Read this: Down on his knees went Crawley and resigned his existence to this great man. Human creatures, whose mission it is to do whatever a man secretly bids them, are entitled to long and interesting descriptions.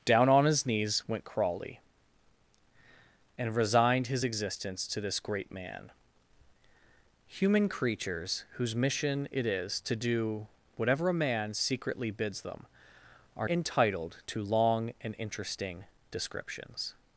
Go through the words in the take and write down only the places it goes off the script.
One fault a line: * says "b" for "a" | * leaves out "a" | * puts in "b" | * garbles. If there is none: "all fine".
all fine